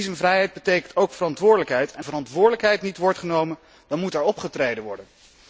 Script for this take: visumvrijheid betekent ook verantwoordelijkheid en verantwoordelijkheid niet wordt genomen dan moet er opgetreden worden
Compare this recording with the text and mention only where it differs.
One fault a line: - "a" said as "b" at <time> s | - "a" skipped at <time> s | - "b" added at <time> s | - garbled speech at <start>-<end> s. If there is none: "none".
none